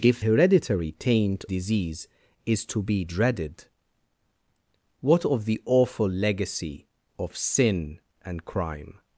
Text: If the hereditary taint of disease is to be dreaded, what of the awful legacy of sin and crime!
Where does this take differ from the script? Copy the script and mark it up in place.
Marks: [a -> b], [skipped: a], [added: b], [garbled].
If [skipped: the] hereditary taint [skipped: of] disease is to be dreaded, what of the awful legacy of sin and crime!